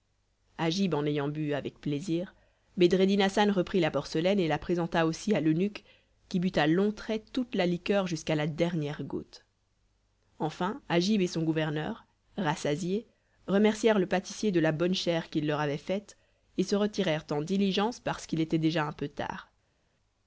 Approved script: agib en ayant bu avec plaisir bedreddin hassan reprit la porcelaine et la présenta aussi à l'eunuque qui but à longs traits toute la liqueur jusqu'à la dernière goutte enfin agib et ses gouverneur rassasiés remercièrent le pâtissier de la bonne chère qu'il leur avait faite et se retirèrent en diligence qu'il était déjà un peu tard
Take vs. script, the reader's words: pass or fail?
fail